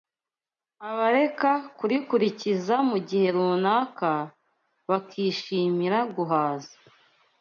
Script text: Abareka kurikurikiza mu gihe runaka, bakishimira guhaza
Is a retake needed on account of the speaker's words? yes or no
no